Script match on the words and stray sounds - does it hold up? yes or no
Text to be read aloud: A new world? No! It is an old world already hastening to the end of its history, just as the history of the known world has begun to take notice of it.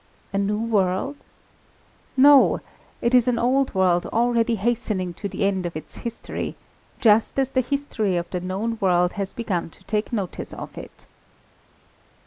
yes